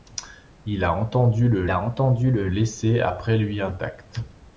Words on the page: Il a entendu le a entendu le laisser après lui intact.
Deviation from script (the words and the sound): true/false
false